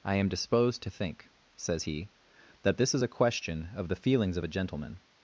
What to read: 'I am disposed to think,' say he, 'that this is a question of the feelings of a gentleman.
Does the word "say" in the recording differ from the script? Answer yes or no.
yes